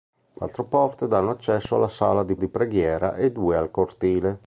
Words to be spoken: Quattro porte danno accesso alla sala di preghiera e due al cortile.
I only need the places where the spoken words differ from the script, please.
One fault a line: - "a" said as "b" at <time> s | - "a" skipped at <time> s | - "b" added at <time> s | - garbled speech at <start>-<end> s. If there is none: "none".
- "di" added at 2.4 s